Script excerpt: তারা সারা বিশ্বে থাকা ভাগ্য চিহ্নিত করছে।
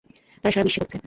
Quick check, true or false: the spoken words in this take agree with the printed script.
false